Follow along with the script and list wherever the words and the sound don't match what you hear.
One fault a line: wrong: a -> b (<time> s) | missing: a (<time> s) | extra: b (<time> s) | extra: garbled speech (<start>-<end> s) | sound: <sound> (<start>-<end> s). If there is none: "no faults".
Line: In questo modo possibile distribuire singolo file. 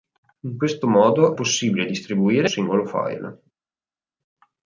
no faults